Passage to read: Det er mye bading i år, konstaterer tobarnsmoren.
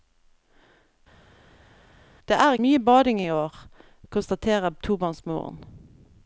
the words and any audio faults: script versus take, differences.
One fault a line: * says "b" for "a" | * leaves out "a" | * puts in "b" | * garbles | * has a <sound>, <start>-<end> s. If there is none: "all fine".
all fine